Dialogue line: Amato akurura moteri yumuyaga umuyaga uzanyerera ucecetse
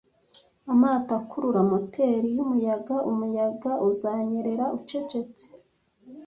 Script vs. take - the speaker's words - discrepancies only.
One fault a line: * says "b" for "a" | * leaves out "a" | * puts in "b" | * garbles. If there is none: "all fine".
all fine